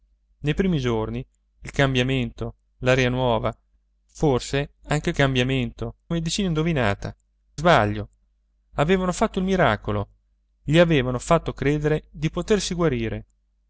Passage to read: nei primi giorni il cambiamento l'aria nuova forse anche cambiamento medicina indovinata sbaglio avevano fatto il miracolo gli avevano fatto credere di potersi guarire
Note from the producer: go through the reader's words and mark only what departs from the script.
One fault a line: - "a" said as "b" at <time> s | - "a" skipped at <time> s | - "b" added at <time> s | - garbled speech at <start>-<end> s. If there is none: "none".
none